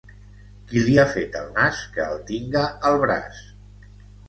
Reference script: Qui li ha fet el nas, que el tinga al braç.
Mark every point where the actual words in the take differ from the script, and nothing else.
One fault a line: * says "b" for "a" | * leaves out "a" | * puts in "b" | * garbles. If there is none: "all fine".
all fine